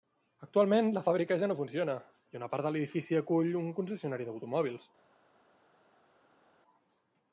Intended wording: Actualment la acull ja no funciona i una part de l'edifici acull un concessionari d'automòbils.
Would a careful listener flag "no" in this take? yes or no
no